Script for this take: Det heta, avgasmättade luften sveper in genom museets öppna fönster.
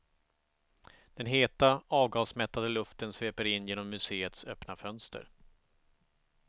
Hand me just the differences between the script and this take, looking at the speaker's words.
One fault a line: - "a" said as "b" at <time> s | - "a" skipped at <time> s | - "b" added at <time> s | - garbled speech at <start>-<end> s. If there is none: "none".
- "Det" said as "Den" at 1.1 s